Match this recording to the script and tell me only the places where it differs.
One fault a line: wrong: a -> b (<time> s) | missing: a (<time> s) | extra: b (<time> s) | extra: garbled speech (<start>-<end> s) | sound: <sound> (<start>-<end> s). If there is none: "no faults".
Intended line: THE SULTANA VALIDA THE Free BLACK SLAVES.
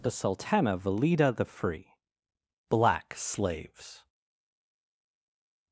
no faults